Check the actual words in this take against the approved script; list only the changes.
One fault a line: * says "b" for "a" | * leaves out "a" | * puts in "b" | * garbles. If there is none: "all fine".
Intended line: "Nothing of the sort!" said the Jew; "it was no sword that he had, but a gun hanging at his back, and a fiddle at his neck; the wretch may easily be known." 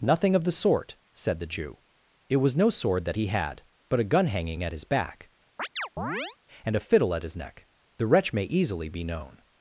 all fine